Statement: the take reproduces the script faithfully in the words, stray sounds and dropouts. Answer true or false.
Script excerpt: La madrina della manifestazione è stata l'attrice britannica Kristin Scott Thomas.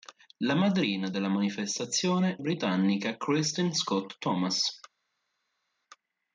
false